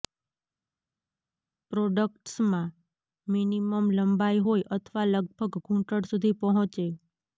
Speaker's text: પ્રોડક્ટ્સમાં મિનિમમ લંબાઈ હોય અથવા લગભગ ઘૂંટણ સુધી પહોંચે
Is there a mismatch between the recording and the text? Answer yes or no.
no